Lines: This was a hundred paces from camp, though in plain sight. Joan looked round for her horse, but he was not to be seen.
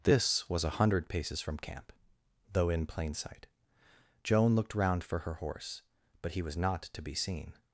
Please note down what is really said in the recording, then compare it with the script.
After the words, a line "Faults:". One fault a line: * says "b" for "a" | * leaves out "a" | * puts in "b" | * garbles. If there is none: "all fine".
This was a hundred paces from camp, though in plain sight. Joan looked round for her horse, but he was not to be seen.
Faults:
all fine